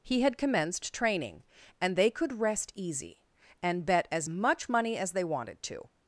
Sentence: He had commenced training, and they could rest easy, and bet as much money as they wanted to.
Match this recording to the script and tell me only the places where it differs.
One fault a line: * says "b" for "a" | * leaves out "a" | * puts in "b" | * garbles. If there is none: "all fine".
all fine